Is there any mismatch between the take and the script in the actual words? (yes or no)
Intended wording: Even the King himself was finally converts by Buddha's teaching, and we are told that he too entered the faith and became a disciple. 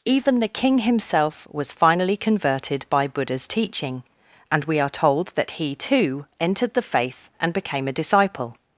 yes